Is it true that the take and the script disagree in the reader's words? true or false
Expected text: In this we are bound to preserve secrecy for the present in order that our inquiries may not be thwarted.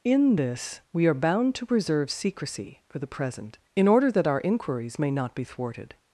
false